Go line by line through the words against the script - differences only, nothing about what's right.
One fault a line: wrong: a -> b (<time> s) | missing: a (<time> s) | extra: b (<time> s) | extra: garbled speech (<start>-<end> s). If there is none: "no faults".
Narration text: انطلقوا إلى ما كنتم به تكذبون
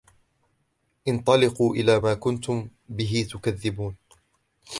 no faults